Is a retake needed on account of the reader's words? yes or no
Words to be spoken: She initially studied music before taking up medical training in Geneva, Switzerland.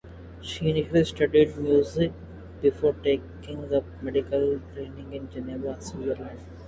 no